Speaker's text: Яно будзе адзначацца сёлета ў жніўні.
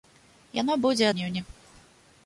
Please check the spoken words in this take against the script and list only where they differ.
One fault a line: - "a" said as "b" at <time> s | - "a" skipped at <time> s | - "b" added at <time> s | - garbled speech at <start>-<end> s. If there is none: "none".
- "адзначацца сёлета ў" skipped at 1.1 s